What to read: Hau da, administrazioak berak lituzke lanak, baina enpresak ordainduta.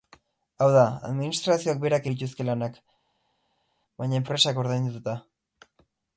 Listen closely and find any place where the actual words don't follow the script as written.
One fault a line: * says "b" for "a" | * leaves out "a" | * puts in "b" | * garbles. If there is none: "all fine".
all fine